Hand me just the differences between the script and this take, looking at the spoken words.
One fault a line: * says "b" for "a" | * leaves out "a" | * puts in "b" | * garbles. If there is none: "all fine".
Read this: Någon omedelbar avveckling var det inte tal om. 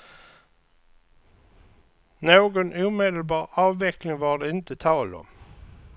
all fine